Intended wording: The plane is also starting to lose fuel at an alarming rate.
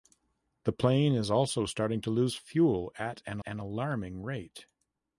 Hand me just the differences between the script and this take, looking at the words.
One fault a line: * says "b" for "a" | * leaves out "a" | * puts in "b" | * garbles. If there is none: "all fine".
* puts in "an"